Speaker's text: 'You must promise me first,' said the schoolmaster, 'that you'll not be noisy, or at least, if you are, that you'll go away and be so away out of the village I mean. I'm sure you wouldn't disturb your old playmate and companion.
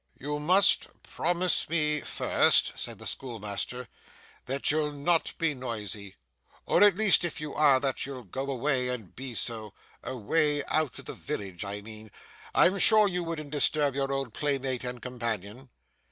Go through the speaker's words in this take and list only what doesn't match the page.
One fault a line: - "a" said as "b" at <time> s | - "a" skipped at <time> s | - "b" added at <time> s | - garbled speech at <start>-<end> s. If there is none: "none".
none